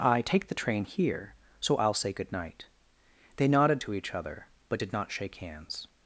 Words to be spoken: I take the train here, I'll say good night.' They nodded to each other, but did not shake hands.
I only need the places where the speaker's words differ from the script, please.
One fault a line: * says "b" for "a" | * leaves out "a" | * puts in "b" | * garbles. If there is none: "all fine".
* puts in "so"